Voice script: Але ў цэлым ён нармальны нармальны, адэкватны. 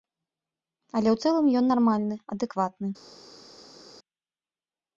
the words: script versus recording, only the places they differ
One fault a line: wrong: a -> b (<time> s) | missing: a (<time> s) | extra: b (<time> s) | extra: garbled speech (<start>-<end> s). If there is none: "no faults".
missing: нармальны (2.2 s)